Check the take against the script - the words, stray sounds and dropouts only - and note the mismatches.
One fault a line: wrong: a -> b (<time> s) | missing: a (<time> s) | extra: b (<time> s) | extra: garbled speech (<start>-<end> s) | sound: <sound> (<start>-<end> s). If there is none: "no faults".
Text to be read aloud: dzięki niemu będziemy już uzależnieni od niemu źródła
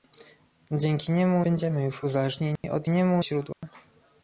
sound: dropout (2.6-2.6 s)
sound: dropout (3.5-3.6 s)